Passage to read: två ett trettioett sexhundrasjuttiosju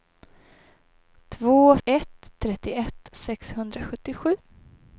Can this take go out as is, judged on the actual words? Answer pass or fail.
pass